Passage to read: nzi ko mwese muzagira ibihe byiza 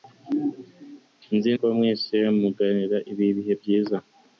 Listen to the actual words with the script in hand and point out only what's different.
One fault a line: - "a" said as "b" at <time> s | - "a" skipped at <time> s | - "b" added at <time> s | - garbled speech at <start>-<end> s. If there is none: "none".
none